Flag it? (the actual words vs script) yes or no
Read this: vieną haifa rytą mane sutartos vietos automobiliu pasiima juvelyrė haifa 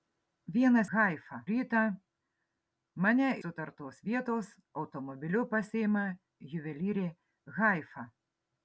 no